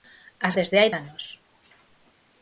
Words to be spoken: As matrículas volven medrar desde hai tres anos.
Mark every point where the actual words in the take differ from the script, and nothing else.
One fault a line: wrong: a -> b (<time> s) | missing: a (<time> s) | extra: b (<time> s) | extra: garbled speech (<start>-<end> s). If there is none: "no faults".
missing: matrículas volven medrar (0.6 s)
missing: tres (0.9 s)